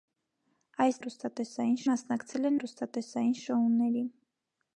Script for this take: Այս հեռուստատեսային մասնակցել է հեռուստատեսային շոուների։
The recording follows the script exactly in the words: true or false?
true